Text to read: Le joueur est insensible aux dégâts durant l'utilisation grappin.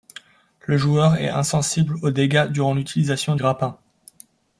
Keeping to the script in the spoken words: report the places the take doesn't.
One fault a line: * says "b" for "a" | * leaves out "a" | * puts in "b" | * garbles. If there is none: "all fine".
all fine